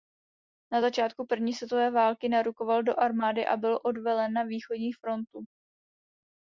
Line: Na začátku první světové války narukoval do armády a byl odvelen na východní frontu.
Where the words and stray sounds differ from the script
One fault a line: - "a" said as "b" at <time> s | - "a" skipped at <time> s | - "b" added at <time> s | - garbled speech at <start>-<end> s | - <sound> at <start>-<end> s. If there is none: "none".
none